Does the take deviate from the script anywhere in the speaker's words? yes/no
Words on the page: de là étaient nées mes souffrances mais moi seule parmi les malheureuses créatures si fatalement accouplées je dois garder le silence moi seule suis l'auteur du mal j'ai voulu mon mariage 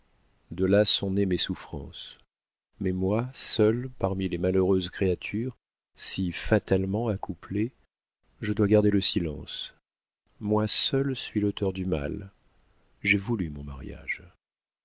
yes